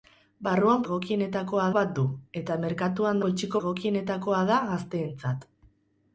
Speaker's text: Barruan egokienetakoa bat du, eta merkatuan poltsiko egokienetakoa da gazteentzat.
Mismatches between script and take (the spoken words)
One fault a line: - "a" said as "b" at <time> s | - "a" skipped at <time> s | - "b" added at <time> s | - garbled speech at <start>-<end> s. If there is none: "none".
none